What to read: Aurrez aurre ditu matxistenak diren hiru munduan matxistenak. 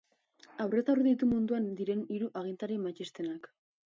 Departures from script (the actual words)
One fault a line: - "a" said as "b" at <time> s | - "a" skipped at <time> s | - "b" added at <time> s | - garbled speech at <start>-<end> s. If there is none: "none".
- "matxistenak" said as "munduan" at 1.3 s
- "munduan" said as "agintari" at 2.4 s